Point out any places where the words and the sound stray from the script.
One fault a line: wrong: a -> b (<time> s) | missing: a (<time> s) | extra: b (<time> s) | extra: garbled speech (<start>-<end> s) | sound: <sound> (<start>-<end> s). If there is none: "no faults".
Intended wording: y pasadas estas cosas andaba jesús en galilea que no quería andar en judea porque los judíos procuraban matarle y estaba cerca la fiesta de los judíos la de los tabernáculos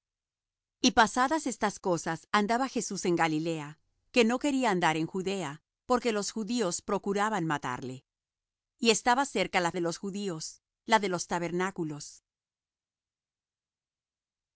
missing: fiesta (9.7 s)